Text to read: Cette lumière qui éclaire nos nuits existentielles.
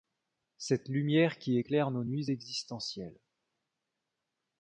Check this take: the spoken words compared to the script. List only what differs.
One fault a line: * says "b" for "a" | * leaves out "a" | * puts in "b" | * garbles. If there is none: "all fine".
all fine